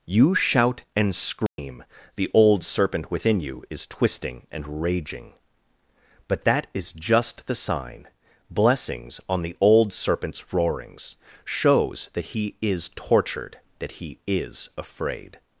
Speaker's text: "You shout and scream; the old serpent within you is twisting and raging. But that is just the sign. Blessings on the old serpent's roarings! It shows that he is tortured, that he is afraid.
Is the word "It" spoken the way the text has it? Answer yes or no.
no